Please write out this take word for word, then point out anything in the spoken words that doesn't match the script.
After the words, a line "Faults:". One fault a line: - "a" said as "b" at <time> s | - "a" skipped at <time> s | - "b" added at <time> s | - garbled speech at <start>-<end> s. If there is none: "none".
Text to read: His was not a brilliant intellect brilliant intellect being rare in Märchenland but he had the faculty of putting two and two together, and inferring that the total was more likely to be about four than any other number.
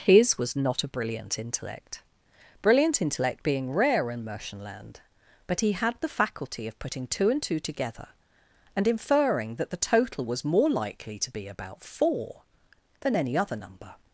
His was not a brilliant intellect brilliant intellect being rare in Märchenland but he had the faculty of putting two and two together, and inferring that the total was more likely to be about four than any other number.
Faults:
none